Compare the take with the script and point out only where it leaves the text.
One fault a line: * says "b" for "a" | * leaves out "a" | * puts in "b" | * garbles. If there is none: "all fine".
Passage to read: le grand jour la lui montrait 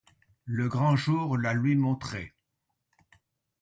all fine